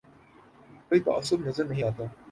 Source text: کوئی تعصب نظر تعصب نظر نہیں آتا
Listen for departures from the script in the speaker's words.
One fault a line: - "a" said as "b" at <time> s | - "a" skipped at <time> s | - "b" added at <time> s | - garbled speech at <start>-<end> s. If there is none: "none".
- "تعصب نظر" skipped at 1.6 s